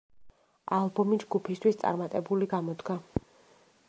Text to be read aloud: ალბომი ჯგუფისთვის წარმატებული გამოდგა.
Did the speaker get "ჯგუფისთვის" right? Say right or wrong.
right